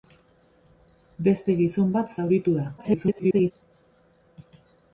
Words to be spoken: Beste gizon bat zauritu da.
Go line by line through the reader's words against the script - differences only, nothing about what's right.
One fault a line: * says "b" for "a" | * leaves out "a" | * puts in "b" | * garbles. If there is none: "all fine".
* garbles